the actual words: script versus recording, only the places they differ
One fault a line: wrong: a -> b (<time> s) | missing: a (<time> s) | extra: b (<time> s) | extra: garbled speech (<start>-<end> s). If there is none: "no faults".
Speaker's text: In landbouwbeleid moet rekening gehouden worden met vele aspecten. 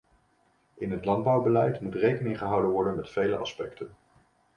extra: het (0.9 s)